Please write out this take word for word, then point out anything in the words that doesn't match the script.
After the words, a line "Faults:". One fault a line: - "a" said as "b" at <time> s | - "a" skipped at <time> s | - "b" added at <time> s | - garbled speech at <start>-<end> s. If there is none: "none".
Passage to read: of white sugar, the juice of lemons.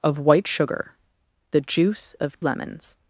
of white sugar, the juice of lemons.
Faults:
none